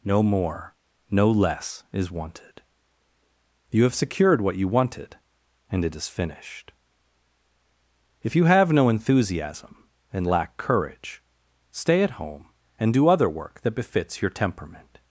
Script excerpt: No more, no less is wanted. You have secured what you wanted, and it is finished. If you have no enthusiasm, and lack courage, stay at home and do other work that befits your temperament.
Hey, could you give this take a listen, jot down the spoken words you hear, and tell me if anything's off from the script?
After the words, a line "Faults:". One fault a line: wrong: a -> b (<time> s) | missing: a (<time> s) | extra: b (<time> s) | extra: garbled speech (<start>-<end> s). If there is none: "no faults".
No more, no less is wanted. You have secured what you wanted, and it is finished. If you have no enthusiasm, and lack courage, stay at home and do other work that befits your temperament.
Faults:
no faults